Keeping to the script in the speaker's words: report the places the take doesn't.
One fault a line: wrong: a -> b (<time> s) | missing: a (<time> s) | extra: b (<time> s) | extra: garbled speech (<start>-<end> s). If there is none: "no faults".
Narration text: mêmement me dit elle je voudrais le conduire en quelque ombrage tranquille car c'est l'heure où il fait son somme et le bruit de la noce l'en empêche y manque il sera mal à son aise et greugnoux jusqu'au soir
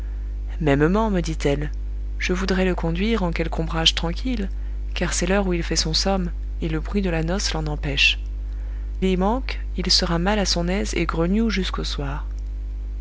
no faults